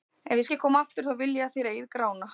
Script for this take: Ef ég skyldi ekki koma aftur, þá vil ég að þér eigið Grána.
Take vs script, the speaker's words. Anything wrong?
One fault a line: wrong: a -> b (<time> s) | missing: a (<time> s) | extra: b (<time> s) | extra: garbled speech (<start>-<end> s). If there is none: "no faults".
missing: skyldi (0.5 s)